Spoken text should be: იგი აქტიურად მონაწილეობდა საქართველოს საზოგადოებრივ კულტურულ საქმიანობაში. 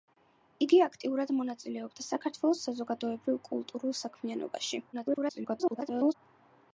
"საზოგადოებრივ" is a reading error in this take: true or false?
false